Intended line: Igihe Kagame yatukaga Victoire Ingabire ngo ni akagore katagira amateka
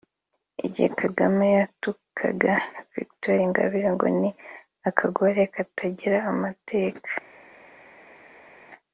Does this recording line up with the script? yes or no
yes